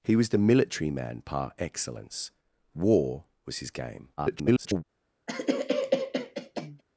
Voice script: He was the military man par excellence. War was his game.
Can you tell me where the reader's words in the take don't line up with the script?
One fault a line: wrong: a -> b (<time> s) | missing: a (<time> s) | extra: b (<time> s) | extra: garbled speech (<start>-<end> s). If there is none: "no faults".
extra: garbled speech (4.2-4.8 s)